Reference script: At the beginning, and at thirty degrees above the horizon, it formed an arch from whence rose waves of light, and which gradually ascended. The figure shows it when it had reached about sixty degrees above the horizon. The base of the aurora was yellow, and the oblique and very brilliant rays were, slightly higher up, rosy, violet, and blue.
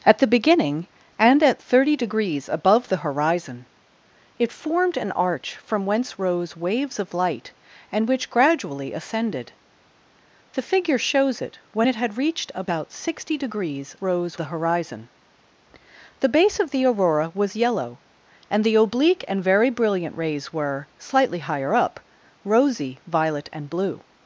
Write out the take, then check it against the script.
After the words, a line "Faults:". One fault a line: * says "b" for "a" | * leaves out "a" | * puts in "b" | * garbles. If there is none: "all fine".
At the beginning, and at thirty degrees above the horizon, it formed an arch from whence rose waves of light, and which gradually ascended. The figure shows it when it had reached about sixty degrees rose the horizon. The base of the aurora was yellow, and the oblique and very brilliant rays were, slightly higher up, rosy, violet, and blue.
Faults:
* says "rose" for "above"